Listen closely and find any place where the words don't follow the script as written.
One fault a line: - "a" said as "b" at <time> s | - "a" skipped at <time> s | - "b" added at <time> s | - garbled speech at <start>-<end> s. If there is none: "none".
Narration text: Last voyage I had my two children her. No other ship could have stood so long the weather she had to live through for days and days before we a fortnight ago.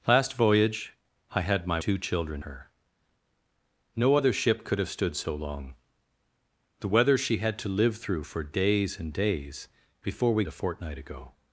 none